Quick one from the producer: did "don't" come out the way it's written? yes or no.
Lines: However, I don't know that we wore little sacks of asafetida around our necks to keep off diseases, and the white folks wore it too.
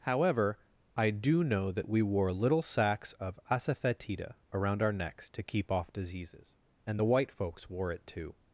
no